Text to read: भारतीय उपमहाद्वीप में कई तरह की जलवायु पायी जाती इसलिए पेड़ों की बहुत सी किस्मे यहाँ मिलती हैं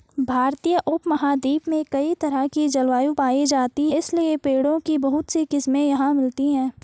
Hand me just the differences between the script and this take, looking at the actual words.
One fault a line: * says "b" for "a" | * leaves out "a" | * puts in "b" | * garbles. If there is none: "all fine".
all fine